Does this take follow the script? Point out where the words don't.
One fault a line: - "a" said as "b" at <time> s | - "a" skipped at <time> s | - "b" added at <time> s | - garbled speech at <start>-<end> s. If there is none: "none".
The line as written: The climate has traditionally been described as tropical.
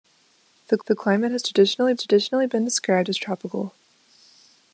- "the" added at 0.9 s
- "traditionally" added at 2.0 s